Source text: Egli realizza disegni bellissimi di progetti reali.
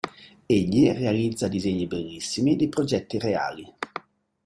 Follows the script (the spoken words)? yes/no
yes